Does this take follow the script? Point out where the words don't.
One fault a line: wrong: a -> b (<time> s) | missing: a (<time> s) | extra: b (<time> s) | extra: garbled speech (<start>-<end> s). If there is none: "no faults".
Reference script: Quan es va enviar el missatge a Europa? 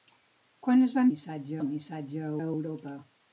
wrong: enviar -> missatge (1.1 s)
extra: a (2.4 s)